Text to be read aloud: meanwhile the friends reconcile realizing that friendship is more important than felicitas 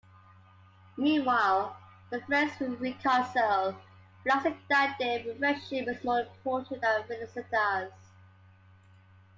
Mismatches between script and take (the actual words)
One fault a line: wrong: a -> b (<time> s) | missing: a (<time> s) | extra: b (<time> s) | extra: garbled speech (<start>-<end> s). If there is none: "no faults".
extra: their (5.0 s)